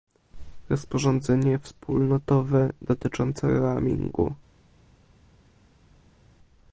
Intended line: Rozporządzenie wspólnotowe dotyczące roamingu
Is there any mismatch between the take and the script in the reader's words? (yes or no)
no